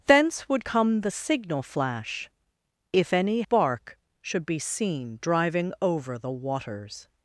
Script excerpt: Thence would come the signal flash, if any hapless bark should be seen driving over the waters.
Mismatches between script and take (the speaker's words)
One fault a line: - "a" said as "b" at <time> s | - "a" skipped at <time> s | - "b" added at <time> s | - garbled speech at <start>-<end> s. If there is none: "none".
- "hapless" skipped at 3.4 s